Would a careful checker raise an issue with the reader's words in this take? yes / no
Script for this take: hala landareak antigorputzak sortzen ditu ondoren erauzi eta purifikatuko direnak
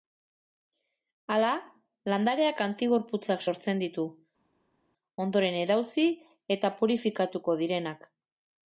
no